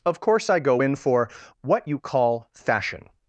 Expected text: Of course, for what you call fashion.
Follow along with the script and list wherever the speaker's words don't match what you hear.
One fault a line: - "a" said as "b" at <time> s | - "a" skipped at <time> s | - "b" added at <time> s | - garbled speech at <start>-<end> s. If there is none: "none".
- "I go in" added at 0.5 s